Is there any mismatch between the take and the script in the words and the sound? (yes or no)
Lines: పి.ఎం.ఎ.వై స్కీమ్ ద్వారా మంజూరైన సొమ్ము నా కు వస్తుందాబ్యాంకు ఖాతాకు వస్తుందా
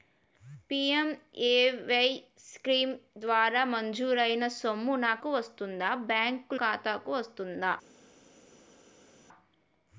no